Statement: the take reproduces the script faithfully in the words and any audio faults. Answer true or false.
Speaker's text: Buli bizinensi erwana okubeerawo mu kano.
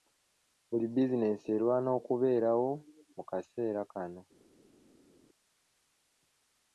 false